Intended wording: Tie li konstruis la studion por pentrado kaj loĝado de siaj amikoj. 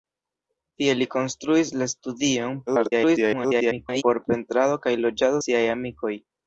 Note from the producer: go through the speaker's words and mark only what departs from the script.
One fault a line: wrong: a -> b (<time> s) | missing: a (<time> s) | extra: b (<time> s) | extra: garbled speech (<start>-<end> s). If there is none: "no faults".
extra: garbled speech (2.7-4.0 s)
missing: de (5.4 s)